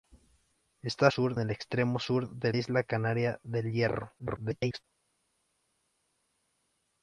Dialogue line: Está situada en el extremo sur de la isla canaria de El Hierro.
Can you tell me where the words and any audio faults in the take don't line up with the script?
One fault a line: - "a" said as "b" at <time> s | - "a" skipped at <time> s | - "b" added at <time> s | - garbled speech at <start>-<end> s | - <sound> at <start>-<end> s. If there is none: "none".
- "situada" said as "sur" at 1.1 s
- "la" skipped at 2.5 s
- garbled speech at 4.2-4.8 s